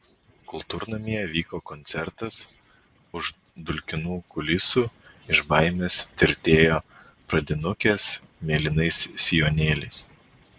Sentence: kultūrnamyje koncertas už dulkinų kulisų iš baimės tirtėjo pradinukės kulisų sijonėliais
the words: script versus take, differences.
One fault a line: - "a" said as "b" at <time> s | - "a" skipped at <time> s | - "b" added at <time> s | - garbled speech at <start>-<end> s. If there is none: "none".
- "vyko" added at 1.3 s
- "kulisų" said as "mėlynais" at 8.5 s